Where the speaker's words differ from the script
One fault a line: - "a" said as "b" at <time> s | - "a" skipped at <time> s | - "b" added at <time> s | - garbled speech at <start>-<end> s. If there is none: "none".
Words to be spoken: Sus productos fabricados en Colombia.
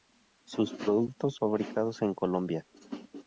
none